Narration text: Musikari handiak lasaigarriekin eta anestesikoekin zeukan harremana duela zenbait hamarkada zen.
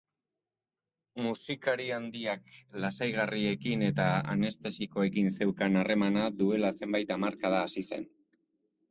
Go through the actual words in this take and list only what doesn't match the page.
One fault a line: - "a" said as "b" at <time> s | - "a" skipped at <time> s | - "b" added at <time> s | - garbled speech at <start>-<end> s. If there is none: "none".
- "hasi" added at 7.7 s